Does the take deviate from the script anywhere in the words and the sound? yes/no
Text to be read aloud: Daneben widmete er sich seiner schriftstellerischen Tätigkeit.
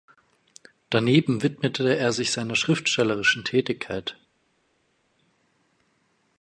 no